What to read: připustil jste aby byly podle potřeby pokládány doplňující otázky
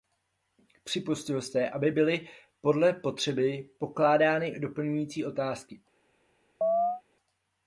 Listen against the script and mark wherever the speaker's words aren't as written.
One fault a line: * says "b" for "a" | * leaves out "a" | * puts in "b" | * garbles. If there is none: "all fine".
all fine